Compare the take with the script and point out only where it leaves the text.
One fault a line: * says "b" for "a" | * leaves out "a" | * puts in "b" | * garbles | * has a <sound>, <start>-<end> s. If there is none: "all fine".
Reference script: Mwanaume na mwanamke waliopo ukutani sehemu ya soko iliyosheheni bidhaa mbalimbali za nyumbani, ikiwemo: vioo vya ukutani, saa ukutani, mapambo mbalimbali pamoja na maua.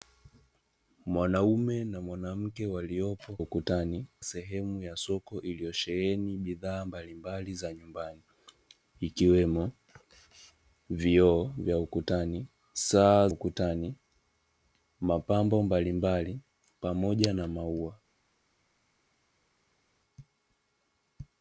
all fine